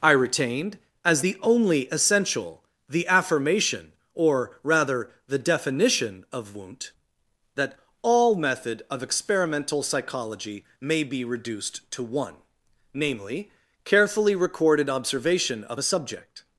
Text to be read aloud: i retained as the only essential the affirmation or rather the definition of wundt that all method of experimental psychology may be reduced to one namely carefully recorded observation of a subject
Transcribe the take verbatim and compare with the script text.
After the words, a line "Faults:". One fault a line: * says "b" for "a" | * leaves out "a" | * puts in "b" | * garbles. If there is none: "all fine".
i retained as the only essential the affirmation or rather the definition of wundt that all method of experimental psychology may be reduced to one namely carefully recorded observation of a subject
Faults:
all fine